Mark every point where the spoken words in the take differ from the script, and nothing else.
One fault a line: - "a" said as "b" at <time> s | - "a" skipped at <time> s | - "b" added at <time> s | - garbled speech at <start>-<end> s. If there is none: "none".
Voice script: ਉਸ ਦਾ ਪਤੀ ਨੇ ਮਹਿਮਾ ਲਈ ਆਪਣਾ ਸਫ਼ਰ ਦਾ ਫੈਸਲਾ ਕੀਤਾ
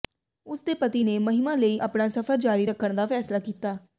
- "ਦਾ" said as "ਦੇ" at 0.6 s
- "ਜਾਰੀ ਰੱਖਣ" added at 2.4 s